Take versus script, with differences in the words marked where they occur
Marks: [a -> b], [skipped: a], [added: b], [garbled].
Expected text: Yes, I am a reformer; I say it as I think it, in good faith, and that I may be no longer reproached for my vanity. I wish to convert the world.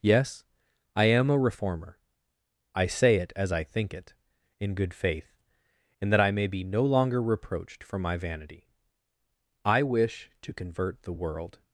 Yes, I am a reformer; I say it as I think it, in good faith, and that I may be no longer reproached for my vanity. I wish to convert the world.